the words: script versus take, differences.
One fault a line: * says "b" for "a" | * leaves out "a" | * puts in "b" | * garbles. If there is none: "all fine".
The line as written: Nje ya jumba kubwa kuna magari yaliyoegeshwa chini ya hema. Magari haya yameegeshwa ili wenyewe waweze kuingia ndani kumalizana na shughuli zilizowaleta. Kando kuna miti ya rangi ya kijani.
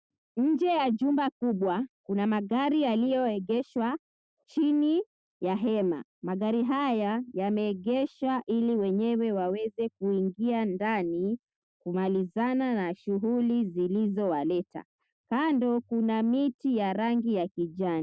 all fine